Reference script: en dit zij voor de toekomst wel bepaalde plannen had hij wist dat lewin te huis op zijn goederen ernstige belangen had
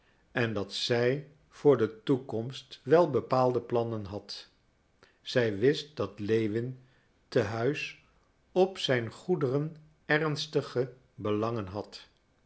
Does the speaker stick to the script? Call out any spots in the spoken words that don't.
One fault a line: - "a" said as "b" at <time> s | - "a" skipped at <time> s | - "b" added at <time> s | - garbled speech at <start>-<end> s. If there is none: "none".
- "dit" said as "dat" at 0.5 s
- "hij" said as "zij" at 5.2 s